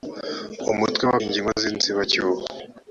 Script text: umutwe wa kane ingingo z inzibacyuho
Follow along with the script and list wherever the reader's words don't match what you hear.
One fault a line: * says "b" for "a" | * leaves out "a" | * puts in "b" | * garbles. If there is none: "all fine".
* leaves out "kane"